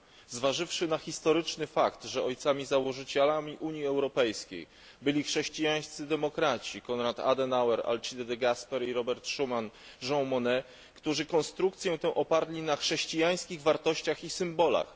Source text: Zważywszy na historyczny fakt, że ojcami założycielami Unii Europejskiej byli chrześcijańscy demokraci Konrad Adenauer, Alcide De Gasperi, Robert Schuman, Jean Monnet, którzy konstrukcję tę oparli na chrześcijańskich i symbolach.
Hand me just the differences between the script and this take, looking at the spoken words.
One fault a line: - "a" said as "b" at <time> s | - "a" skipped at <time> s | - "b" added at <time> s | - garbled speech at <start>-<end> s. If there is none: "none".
- "wartościach" added at 13.6 s